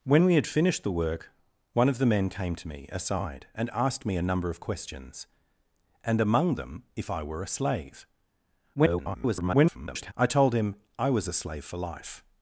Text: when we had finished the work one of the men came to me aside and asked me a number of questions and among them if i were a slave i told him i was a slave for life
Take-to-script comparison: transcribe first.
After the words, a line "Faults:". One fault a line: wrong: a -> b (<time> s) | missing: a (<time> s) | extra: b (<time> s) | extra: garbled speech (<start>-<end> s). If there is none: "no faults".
when we had finished the work one of the men came to me aside and asked me a number of questions and among them if i were a slave [garbled] i told him i was a slave for life
Faults:
extra: garbled speech (8.7-10.1 s)